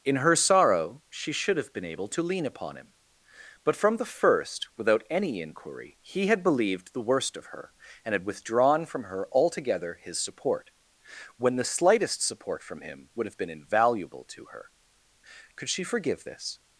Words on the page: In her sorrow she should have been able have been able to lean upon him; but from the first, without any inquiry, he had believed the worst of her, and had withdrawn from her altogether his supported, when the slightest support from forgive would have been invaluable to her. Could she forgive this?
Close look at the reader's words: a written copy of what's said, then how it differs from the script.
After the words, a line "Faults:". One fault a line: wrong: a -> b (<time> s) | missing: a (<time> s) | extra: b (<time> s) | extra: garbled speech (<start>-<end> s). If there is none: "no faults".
In her sorrow she should have been able to lean upon him; but from the first, without any inquiry, he had believed the worst of her, and had withdrawn from her altogether his support, when the slightest support from him would have been invaluable to her. Could she forgive this?
Faults:
missing: have been able (2.1 s)
wrong: supported -> support (10.2 s)
wrong: forgive -> him (12.8 s)